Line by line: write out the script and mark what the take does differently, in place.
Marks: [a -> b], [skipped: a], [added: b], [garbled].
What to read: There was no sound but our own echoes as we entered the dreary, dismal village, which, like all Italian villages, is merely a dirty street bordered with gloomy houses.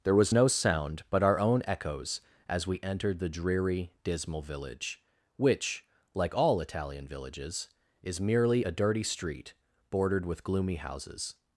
There was no sound but our own echoes as we entered the dreary, dismal village, which, like all Italian villages, is merely a dirty street bordered with gloomy houses.